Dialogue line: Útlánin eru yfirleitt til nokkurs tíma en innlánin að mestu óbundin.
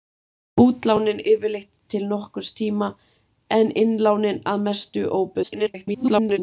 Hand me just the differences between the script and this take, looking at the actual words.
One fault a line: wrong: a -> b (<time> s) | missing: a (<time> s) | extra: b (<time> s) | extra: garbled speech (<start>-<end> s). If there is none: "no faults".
missing: eru (1.2 s)
extra: garbled speech (5.4-6.4 s)